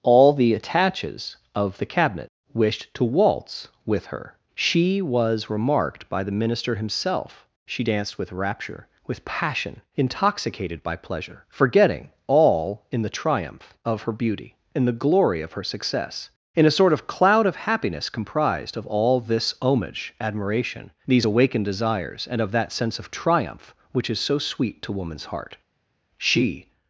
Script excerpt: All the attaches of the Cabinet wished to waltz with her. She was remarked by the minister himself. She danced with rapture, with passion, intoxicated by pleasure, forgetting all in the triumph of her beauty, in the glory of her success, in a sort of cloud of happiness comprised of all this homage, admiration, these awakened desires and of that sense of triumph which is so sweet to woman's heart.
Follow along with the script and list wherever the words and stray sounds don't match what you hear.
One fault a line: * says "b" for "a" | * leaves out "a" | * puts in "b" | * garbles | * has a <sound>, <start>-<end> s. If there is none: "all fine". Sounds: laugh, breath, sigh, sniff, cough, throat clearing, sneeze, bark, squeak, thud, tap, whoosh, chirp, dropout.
* puts in "She"